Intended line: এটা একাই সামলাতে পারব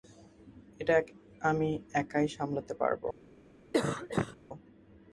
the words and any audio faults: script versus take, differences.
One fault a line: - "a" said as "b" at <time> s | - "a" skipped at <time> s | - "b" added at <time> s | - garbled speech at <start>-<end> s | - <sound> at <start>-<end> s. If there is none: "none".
- "আমি" added at 1.4 s
- cough at 3.7-4.4 s